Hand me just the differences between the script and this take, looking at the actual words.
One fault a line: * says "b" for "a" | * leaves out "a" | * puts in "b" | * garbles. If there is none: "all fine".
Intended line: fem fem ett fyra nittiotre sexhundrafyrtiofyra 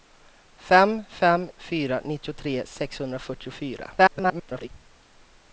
* leaves out "ett"
* garbles